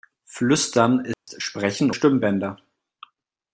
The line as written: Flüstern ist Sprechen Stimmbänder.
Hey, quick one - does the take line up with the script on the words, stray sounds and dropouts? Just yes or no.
no